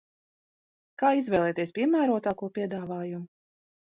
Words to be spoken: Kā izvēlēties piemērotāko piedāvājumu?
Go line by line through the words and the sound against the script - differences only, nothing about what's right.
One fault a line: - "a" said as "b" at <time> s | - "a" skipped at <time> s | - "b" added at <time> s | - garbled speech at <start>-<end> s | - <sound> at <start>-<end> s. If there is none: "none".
none